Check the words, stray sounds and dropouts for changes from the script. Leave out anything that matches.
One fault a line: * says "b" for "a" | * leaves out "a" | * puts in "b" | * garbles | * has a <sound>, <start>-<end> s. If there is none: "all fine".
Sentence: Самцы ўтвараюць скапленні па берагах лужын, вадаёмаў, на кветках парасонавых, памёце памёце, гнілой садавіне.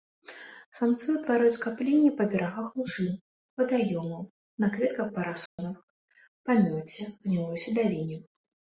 * has a dropout, 5.5-5.6 s
* leaves out "памёце"